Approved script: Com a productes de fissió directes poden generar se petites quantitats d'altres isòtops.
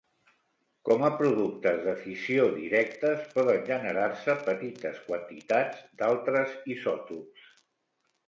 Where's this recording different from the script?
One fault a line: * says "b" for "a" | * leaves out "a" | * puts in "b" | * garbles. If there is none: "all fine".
all fine